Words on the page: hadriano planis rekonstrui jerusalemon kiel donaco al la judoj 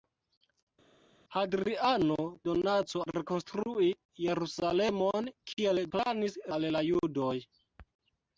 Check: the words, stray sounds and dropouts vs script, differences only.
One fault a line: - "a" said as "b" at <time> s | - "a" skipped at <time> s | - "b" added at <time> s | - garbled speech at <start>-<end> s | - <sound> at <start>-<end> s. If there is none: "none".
- "planis" said as "donaco" at 2.5 s
- "donaco" said as "planis" at 6.0 s